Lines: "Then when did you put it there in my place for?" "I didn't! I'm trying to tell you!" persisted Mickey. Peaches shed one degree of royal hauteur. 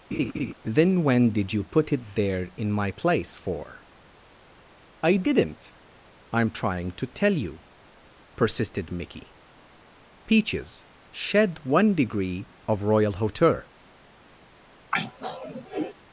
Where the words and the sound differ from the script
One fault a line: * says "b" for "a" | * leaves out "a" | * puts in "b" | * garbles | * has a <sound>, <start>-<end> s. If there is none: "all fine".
* has a laugh, 0.1-0.5 s
* has a throat clearing, 14.9-15.9 s